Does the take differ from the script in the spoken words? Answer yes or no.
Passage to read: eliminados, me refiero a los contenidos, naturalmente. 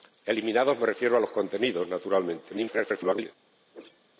yes